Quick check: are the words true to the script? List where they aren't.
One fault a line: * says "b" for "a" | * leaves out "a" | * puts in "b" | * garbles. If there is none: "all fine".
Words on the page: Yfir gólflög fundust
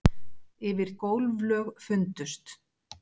all fine